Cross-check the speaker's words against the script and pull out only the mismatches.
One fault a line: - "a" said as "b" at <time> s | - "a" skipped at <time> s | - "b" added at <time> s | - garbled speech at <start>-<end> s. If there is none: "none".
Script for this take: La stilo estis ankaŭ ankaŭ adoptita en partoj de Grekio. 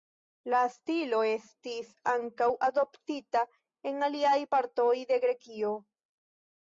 - "ankaŭ" skipped at 2.5 s
- "aliaj" added at 4.1 s